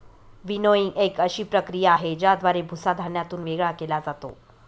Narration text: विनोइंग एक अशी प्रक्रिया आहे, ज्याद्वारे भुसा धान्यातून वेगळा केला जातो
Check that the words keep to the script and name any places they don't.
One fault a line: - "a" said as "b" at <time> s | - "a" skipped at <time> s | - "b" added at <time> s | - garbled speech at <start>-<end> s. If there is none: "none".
none